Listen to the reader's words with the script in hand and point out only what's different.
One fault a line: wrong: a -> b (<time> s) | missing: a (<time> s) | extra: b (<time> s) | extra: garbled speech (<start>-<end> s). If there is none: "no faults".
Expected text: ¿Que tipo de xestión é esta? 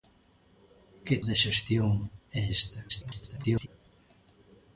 missing: tipo (1.1 s)
extra: garbled speech (2.9-3.7 s)